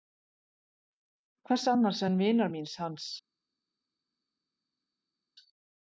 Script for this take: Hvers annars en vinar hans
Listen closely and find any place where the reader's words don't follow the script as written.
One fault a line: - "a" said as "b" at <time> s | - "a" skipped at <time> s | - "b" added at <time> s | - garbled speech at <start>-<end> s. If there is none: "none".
- "míns" added at 2.6 s